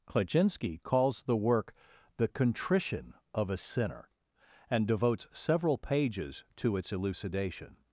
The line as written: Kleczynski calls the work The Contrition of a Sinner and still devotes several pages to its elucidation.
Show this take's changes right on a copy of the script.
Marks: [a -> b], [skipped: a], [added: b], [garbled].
Kleczynski calls the work The Contrition of a Sinner and [skipped: still] devotes several pages to its elucidation.